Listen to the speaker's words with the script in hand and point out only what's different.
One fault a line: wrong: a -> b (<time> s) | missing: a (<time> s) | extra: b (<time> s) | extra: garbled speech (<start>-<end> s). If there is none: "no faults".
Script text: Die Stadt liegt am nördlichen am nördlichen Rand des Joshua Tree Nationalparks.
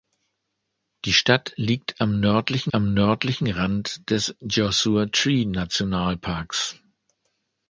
no faults